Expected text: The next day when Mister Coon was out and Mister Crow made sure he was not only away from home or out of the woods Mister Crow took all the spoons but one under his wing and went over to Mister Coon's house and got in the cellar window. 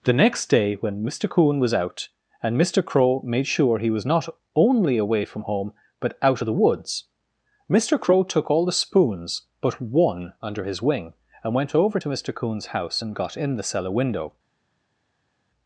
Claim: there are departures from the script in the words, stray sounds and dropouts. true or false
true